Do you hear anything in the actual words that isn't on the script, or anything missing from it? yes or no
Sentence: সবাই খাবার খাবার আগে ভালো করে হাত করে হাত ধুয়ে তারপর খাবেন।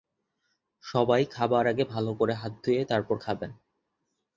yes